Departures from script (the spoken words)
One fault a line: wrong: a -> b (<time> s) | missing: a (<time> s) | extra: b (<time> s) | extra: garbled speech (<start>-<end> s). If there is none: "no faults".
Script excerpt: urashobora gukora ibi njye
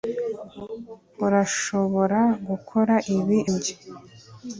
no faults